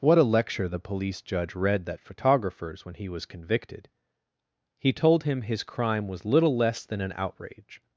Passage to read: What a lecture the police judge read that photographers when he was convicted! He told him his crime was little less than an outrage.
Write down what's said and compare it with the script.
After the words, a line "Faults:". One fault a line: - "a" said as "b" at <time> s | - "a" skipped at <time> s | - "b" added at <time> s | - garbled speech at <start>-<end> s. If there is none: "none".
What a lecture the police judge read that photographers when he was convicted! He told him his crime was little less than an outrage.
Faults:
none